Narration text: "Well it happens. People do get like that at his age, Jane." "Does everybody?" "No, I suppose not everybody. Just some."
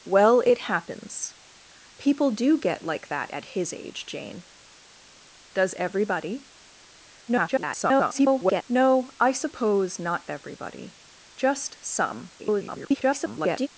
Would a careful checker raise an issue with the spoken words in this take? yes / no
yes